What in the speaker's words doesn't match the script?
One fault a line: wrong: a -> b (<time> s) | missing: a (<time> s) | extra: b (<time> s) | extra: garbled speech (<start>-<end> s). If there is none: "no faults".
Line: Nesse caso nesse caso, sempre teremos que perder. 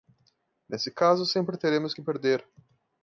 missing: nesse caso (1.3 s)